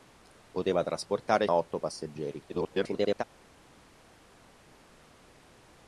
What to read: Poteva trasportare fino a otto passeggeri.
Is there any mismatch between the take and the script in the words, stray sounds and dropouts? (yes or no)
yes